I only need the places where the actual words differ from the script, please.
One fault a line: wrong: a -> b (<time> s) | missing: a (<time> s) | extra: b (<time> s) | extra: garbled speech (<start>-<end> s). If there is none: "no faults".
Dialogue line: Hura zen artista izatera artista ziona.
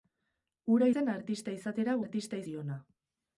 no faults